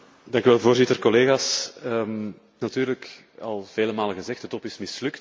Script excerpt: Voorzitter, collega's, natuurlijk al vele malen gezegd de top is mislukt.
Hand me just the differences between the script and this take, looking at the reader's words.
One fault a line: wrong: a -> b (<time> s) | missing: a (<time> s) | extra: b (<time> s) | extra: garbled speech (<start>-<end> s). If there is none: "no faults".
no faults